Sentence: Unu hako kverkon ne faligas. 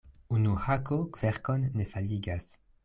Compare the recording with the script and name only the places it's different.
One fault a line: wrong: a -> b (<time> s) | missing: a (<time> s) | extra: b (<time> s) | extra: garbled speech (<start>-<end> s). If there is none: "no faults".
no faults